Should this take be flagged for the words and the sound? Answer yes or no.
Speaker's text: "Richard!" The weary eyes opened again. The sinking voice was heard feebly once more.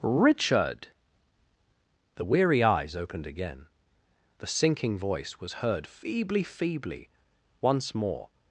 yes